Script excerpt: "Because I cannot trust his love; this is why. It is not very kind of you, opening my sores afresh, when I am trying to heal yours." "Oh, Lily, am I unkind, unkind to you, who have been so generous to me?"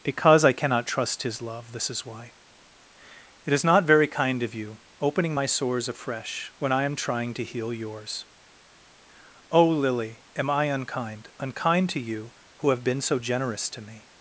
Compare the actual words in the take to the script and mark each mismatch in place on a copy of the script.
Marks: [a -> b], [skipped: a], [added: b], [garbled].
"Because I cannot trust his love; this is why. It is not very kind of you, opening my sores afresh, when I am trying to heal yours." "Oh, Lily, am I unkind, unkind to you, who have been so generous to me?"